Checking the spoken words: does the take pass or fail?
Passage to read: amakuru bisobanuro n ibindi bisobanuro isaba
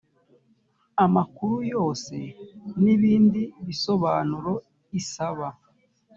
fail